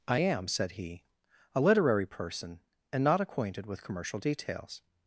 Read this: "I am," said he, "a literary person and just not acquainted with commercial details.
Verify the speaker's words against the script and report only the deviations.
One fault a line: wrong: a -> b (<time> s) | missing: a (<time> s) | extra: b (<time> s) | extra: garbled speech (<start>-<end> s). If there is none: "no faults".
missing: just (3.0 s)